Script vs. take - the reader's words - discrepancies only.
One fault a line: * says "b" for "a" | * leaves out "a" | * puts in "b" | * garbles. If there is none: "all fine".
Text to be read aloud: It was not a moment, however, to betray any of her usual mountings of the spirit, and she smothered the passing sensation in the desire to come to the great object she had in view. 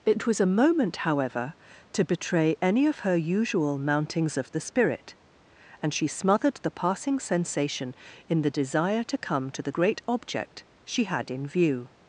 * leaves out "not"